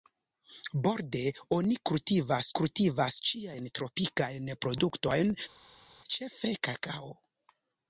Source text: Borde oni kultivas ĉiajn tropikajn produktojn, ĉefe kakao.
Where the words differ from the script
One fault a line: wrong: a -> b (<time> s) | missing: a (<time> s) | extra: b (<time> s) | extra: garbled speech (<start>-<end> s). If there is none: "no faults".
extra: kultivas (2.6 s)